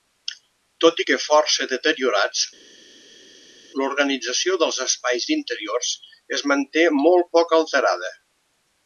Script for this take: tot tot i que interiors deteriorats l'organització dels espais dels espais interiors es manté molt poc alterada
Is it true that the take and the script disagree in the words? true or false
true